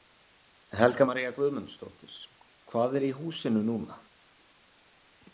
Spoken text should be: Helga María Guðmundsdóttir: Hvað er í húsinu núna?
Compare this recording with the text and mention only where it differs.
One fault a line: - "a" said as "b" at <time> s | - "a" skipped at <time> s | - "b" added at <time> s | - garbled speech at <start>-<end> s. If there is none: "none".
none